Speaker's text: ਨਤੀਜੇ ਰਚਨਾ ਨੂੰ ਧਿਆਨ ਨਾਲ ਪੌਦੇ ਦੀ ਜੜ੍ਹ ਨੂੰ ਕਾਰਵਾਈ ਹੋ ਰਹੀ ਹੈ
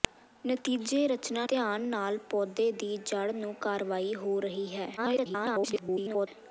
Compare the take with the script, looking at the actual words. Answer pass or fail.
fail